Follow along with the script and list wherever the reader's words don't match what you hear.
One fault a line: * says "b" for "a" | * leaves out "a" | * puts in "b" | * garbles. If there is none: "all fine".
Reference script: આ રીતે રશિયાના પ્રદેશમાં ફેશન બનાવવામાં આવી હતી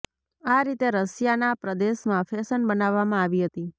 all fine